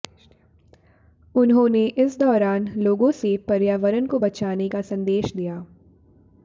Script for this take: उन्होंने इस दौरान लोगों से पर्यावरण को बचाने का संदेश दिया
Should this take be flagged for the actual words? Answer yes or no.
no